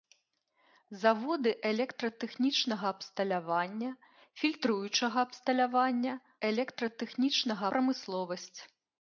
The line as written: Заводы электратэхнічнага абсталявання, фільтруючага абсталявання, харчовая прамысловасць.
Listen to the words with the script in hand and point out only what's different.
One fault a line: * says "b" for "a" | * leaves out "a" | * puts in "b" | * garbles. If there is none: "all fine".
* says "электратэхнічнага" for "харчовая"